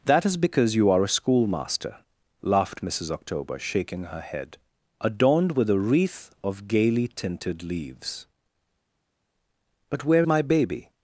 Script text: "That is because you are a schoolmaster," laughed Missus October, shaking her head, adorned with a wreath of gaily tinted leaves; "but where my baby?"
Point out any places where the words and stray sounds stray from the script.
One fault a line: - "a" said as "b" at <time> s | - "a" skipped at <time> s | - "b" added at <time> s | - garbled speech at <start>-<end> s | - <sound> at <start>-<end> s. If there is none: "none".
none